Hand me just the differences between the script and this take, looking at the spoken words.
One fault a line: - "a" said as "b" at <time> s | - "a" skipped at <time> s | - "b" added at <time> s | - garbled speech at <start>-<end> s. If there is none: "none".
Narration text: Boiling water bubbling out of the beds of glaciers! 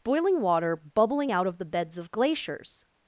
none